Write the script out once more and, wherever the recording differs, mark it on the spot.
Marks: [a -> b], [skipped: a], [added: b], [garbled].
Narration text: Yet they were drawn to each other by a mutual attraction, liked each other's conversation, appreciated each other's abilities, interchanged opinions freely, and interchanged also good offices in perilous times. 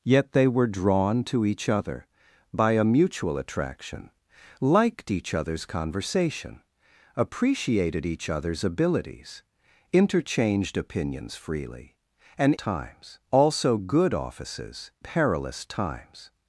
Yet they were drawn to each other by a mutual attraction, liked each other's conversation, appreciated each other's abilities, interchanged opinions freely, and [interchanged -> times] also good offices [skipped: in] perilous times.